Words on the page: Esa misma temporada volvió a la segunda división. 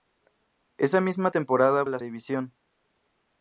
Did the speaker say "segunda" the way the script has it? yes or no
no